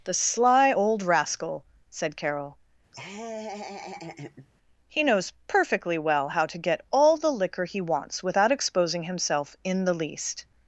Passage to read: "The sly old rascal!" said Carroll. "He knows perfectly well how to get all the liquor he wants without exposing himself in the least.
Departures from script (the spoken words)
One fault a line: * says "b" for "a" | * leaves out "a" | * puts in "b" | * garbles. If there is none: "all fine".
all fine